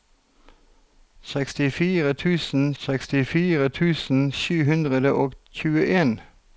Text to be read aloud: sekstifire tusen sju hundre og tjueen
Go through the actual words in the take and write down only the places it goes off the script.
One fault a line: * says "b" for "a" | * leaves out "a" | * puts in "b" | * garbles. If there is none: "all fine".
* puts in "sekstifire tusen"